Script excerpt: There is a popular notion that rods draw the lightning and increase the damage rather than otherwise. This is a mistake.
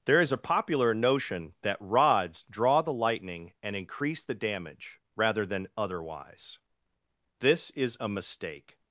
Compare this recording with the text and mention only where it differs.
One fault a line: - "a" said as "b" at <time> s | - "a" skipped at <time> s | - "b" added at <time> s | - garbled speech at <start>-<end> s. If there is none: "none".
none